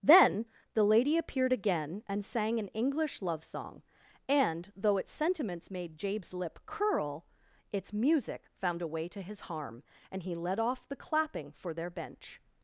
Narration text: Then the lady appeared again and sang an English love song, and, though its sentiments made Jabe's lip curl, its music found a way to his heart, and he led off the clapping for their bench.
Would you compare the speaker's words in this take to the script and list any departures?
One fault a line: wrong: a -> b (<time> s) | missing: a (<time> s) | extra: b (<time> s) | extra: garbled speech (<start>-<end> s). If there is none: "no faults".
wrong: heart -> harm (9.4 s)